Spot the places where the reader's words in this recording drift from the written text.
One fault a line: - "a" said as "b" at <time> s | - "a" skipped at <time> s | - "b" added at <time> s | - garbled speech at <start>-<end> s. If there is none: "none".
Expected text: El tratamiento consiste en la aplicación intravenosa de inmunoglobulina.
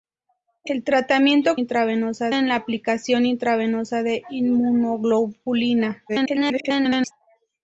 - "consiste" said as "intravenosa" at 1.5 s
- garbled speech at 6.1-7.1 s